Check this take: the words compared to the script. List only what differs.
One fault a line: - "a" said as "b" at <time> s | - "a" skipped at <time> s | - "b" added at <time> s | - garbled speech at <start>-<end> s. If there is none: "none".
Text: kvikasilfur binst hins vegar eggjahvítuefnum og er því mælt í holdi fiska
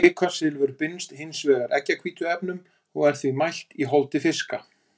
none